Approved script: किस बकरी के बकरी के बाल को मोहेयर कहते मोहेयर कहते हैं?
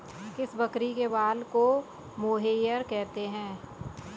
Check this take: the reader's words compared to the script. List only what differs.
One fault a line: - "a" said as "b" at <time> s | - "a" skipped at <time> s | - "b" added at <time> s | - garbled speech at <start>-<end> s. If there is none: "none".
- "बकरी के" skipped at 1.1 s
- "मोहेयर कहते" skipped at 3.3 s